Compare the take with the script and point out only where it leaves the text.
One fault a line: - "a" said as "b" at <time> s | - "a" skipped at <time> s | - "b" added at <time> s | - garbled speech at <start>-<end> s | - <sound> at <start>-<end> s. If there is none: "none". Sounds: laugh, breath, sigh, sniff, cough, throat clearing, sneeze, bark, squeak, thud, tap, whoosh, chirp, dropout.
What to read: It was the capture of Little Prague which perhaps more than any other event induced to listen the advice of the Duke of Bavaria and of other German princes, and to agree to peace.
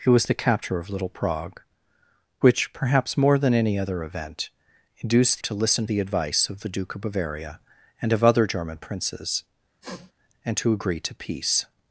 - sniff at 9.8-10.1 s